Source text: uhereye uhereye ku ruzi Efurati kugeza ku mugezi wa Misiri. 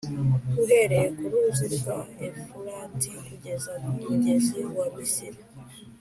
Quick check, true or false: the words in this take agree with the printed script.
false